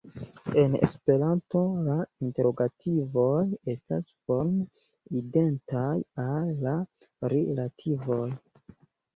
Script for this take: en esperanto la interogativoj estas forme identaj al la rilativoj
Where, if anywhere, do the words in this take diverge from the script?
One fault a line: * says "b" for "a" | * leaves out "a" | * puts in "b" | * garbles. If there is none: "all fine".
all fine